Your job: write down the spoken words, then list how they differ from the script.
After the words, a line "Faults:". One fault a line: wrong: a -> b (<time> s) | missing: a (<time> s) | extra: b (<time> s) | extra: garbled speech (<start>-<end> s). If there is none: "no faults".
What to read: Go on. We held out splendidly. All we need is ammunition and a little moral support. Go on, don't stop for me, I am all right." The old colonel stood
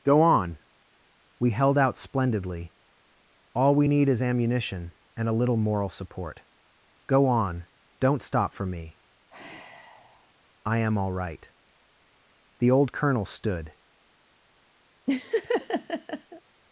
Go on. We held out splendidly. All we need is ammunition and a little moral support. Go on, don't stop for me, I am all right." The old colonel stood
Faults:
no faults